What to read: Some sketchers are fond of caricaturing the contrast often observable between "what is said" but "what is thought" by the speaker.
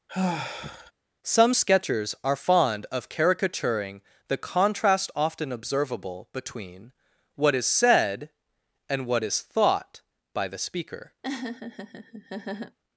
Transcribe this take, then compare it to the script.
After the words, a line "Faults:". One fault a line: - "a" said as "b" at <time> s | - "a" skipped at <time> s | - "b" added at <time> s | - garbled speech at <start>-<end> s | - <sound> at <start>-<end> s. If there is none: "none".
Some sketchers are fond of caricaturing the contrast often observable between "what is said" and "what is thought" by the speaker.
Faults:
- sigh at 0.1-0.9 s
- "but" said as "and" at 8.9 s
- laugh at 11.2-12.8 s